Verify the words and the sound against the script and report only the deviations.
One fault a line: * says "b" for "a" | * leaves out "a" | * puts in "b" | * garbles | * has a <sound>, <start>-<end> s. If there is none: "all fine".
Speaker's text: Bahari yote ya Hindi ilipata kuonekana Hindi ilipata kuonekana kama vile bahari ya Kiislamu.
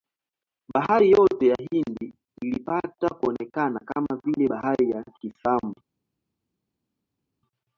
* leaves out "Hindi ilipata kuonekana"